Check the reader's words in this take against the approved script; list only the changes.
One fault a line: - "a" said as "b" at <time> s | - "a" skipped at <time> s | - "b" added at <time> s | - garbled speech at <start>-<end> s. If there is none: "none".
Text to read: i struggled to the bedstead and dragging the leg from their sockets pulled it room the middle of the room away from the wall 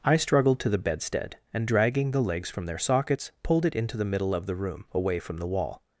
- "leg" said as "legs" at 2.2 s
- "room" said as "into" at 3.8 s